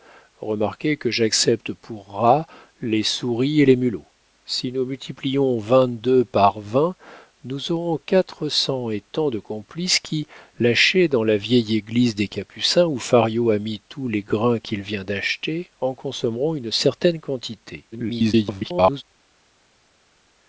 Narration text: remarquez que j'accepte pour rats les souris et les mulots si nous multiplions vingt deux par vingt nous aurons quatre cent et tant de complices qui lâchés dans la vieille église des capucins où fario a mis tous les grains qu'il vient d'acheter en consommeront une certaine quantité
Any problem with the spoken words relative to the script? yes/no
yes